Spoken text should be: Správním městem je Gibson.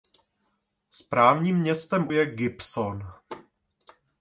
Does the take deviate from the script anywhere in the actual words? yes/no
no